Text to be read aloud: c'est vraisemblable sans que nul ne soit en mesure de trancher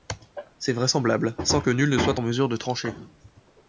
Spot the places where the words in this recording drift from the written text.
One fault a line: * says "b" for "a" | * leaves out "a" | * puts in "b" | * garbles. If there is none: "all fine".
all fine